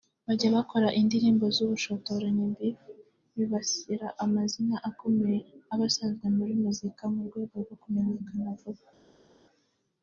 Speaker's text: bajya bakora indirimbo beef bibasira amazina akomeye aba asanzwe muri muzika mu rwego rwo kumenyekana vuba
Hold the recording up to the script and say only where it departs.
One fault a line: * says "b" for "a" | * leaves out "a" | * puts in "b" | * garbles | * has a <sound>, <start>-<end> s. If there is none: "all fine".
* puts in "z'ubushotoranyi"